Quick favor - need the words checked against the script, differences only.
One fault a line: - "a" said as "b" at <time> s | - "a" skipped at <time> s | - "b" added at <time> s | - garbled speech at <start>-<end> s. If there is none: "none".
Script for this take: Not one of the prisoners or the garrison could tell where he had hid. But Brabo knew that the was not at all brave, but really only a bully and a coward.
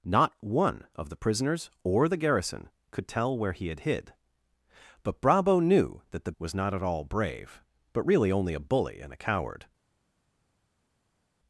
none